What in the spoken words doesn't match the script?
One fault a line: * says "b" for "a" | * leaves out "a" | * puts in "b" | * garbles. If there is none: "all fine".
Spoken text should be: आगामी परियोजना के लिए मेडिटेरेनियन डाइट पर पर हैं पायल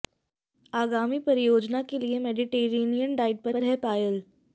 all fine